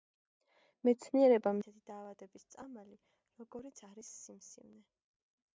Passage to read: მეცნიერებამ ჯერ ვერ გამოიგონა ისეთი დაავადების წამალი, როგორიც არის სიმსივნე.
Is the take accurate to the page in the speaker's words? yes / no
no